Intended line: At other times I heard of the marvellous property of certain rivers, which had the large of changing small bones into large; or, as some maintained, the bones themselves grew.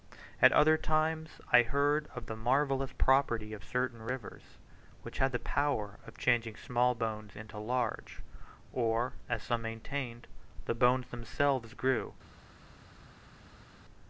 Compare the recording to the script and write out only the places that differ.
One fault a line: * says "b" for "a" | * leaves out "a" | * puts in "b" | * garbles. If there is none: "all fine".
* says "power" for "large"